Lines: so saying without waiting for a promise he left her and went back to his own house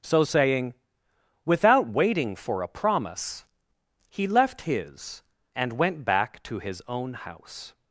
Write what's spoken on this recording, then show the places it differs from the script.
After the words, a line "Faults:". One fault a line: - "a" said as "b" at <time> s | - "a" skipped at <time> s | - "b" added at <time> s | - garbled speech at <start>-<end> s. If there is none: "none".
so saying without waiting for a promise he left his and went back to his own house
Faults:
- "her" said as "his" at 4.6 s